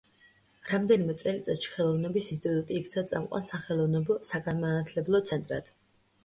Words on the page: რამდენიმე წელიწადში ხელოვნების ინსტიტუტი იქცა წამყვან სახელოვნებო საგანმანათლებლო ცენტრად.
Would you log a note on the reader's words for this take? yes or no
no